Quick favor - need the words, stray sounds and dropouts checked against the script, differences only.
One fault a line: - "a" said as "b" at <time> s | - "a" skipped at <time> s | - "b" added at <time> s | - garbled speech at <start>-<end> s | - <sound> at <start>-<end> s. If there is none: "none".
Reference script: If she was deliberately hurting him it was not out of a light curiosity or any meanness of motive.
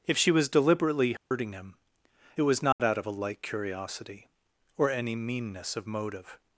- dropout at 1.2-1.3 s
- dropout at 2.7-2.8 s